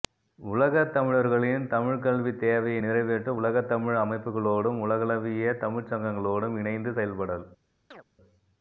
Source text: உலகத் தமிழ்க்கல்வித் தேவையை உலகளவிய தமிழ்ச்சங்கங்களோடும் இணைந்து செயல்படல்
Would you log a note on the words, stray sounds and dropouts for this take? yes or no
yes